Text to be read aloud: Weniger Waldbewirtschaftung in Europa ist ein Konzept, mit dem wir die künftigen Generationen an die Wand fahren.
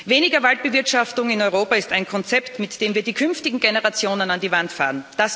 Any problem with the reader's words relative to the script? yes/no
no